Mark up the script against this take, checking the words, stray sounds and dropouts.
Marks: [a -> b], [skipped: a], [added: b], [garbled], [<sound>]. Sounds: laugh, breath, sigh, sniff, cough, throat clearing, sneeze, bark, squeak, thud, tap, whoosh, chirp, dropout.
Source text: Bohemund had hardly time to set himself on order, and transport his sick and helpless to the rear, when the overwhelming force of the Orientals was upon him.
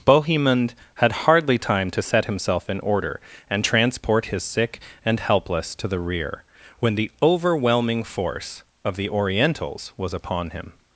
Bohemund had hardly time to set himself [on -> in] order, and transport his sick and helpless to the rear, when the overwhelming force of the Orientals was upon him.